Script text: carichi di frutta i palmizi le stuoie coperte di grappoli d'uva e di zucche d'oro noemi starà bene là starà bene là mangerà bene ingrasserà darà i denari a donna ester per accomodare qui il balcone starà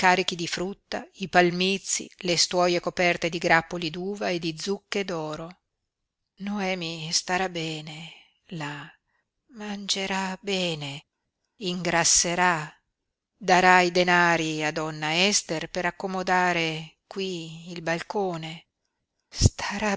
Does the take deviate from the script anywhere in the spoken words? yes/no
yes